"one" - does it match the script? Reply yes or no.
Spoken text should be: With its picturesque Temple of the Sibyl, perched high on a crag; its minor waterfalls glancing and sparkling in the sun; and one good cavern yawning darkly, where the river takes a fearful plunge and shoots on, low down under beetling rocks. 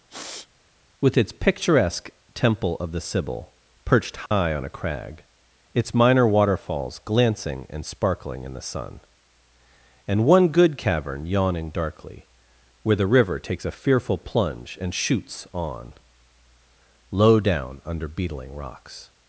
yes